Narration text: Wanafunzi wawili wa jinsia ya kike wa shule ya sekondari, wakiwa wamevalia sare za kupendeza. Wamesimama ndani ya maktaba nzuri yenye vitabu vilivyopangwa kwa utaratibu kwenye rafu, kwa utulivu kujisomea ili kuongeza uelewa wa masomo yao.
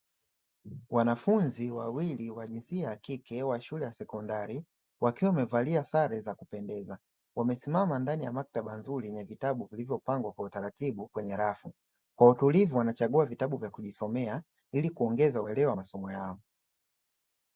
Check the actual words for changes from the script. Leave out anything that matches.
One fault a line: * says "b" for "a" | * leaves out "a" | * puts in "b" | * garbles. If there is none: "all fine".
* puts in "wanachagua vitabu vya"